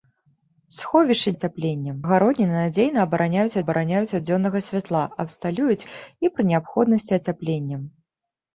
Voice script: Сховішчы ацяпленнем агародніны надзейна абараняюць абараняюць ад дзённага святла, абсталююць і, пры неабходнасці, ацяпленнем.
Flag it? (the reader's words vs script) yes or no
no